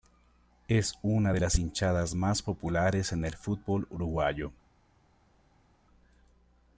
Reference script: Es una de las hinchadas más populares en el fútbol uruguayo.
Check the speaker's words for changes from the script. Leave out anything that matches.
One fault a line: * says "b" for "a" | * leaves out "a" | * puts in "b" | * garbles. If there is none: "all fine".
all fine